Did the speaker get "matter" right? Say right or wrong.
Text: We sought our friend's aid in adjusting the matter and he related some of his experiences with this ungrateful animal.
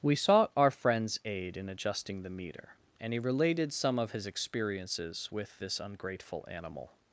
wrong